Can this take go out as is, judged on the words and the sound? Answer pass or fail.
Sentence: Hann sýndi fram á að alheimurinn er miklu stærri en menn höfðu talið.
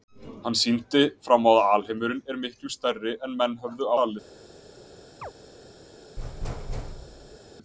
fail